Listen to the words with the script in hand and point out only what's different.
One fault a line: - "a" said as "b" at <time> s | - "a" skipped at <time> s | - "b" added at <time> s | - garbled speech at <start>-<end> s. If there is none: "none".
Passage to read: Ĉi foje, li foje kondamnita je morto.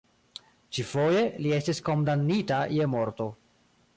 - "foje" said as "estis" at 1.6 s